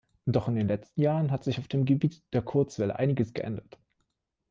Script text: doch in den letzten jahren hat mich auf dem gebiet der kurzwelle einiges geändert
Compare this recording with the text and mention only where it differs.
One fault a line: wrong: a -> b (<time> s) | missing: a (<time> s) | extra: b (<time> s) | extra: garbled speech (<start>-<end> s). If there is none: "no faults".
wrong: mich -> sich (1.4 s)